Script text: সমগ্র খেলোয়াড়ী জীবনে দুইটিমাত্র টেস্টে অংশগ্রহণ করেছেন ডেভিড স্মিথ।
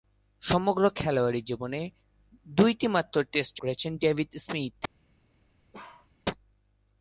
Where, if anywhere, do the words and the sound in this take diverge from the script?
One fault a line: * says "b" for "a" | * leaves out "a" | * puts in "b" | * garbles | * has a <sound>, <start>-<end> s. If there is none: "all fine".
* leaves out "অংশগ্রহণ"
* has a bark, 5.7-6.1 s